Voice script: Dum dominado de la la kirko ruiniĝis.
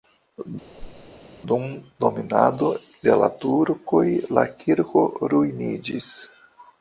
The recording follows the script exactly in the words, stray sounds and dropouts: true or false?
false